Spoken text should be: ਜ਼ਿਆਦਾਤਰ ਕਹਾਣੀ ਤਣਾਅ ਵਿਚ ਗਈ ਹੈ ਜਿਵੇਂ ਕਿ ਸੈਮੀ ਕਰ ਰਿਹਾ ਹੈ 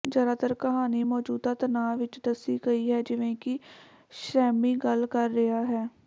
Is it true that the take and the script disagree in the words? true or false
true